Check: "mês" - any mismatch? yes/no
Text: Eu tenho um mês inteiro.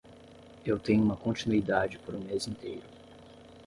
no